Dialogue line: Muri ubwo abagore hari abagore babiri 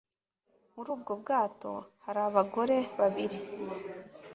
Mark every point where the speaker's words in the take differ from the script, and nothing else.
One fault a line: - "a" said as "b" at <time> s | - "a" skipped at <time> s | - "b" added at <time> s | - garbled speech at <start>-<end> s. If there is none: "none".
- "abagore" said as "bwato" at 1.2 s